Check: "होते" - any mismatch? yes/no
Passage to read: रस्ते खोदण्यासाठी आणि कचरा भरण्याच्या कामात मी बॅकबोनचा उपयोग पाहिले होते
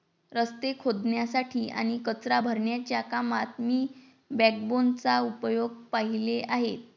yes